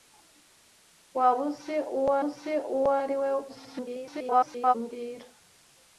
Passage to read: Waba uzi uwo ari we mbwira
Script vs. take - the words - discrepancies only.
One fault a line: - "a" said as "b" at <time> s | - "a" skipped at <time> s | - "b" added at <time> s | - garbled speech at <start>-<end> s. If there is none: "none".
- "uzi uwo" added at 2.2 s
- garbled speech at 3.5-4.7 s